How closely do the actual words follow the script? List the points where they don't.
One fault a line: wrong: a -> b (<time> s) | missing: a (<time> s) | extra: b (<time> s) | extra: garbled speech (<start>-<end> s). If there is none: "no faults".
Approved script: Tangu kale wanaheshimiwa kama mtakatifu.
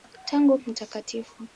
missing: kale wanaheshimiwa kama (0.6 s)